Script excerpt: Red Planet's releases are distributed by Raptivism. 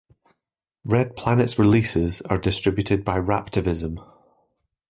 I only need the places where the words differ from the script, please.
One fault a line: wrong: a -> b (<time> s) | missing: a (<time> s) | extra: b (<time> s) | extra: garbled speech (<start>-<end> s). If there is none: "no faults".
no faults